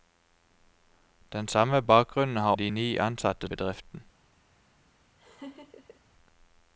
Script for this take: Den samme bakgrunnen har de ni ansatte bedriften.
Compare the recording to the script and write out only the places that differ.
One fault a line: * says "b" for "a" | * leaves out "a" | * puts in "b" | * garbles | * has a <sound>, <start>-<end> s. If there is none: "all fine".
* has a laugh, 5.2-6.0 s